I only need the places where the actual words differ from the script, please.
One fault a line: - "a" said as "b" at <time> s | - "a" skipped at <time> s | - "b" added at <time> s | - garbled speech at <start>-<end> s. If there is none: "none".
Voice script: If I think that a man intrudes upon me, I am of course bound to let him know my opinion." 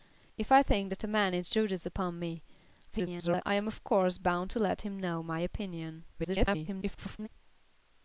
- garbled speech at 2.9-3.4 s
- garbled speech at 6.1-7.3 s